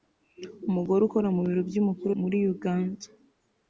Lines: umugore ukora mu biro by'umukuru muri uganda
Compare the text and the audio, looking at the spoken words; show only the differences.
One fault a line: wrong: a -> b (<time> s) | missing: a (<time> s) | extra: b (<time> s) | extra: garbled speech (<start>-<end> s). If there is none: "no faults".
no faults